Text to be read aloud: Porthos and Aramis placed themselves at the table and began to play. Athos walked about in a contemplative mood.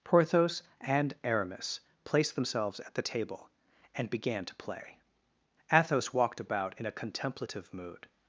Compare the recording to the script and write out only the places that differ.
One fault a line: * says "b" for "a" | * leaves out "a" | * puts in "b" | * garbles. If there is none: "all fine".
all fine